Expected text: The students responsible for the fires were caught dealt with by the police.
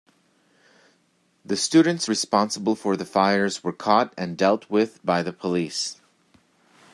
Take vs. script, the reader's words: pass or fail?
fail